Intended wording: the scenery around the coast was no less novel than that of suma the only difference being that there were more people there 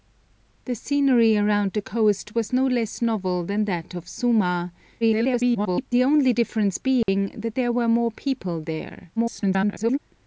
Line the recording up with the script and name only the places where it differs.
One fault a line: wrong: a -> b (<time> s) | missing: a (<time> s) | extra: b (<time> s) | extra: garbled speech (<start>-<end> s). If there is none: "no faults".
extra: garbled speech (5.0-5.9 s)
extra: garbled speech (9.2-10.0 s)